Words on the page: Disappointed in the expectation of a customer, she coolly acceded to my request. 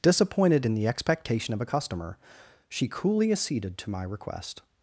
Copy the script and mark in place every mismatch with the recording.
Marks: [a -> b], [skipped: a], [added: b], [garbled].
Disappointed in the expectation of a customer, she coolly acceded to my request.